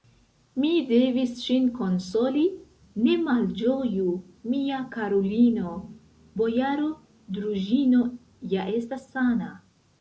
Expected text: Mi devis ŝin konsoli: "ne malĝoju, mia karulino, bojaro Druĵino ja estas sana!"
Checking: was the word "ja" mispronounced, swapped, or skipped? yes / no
no